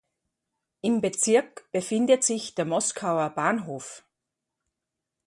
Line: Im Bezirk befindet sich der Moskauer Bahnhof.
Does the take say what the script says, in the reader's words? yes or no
yes